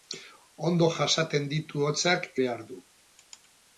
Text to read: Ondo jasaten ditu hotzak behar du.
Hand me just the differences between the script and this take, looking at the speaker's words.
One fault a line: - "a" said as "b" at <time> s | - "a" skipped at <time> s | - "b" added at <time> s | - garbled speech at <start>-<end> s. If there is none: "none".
none